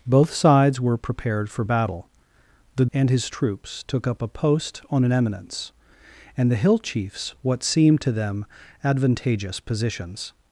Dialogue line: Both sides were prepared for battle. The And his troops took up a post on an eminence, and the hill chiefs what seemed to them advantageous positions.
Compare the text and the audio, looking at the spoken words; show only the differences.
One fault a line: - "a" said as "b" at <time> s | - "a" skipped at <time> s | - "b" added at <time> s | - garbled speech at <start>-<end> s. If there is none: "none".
none